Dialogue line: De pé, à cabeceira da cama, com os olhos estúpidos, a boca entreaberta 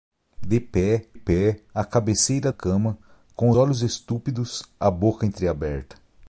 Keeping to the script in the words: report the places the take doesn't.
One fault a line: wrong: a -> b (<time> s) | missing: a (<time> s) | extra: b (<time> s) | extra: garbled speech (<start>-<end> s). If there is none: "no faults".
extra: pé (1.1 s)
missing: da (2.5 s)
missing: os (3.5 s)